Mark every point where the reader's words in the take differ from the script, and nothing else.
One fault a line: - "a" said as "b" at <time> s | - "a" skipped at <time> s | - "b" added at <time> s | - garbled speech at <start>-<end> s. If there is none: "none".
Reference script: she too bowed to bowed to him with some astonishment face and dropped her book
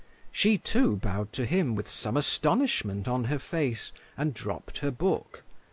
- "bowed to" skipped at 1.4 s
- "on her" added at 3.1 s